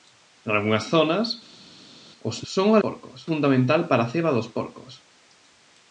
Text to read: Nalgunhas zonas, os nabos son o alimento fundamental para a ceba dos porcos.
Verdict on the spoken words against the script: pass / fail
fail